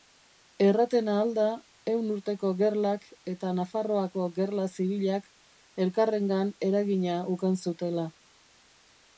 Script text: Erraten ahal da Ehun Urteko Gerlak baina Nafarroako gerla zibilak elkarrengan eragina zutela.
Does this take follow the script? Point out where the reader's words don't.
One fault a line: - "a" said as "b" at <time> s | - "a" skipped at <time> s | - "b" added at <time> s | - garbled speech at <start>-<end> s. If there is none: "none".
- "baina" said as "eta" at 3.3 s
- "ukan" added at 7.4 s